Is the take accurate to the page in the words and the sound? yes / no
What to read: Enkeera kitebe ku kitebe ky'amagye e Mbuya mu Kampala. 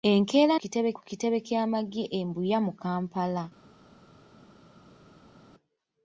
yes